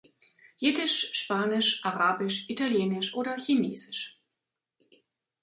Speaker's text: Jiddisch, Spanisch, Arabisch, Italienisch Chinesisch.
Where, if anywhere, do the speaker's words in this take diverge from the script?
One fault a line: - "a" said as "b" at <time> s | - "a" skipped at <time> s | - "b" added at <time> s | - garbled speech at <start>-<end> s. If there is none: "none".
- "oder" added at 3.1 s